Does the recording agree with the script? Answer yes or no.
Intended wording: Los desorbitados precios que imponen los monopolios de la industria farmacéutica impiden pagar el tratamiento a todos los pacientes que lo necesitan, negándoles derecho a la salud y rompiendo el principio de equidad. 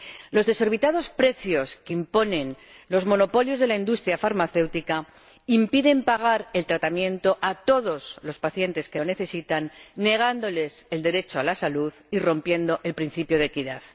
no